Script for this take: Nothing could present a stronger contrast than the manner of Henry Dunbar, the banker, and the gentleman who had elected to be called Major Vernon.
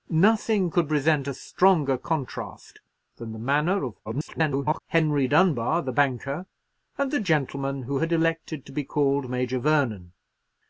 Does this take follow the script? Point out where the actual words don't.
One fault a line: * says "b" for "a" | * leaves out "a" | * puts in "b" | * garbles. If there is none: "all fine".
* garbles